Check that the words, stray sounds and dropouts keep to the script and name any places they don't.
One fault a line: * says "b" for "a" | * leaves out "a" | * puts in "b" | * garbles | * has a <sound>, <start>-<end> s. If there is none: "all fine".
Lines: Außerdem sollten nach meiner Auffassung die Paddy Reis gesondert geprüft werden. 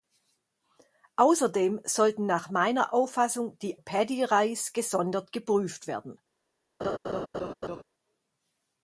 * has a laugh, 6.8-7.8 s